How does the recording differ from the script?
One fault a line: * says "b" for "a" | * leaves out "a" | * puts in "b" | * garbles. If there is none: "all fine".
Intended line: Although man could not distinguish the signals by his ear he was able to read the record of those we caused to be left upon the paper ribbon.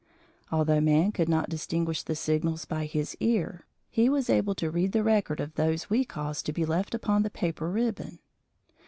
all fine